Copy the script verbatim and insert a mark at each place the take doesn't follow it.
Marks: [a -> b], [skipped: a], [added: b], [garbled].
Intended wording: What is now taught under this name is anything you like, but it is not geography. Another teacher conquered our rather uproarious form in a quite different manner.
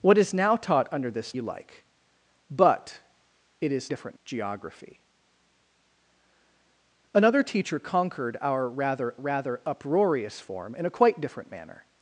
What is now taught under this [skipped: name is anything] you like, but it is [not -> different] geography. Another teacher conquered our rather [added: rather] uproarious form in a quite different manner.